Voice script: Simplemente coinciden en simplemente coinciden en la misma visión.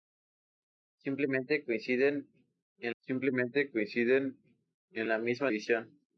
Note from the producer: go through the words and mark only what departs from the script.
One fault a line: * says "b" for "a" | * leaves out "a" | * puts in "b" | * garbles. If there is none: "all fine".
all fine